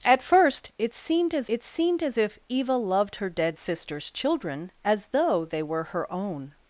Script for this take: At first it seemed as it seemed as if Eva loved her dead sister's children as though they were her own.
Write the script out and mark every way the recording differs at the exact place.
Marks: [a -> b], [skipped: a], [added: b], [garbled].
At first it seemed as it seemed as if Eva loved her dead sister's children as though they were her own.